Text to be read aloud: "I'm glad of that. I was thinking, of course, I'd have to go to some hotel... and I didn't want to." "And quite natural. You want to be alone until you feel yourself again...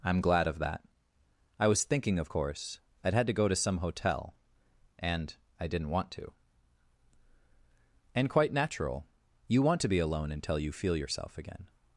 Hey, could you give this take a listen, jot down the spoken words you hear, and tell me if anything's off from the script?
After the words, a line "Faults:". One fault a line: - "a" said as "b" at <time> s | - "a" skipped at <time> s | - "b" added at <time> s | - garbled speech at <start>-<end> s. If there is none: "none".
"I'm glad of that. I was thinking, of course, I'd had to go to some hotel... and I didn't want to." "And quite natural. You want to be alone until you feel yourself again...
Faults:
- "have" said as "had" at 3.1 s